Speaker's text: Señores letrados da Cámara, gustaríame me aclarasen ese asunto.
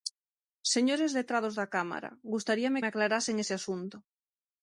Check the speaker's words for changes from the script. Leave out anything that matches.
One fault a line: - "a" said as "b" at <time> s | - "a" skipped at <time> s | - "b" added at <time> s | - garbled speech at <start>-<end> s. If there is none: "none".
none